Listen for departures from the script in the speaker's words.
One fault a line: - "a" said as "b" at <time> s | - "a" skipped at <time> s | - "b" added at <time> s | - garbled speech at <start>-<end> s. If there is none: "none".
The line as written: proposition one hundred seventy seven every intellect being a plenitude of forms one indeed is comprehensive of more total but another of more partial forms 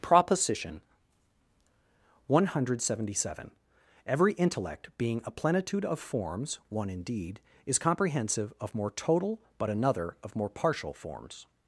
none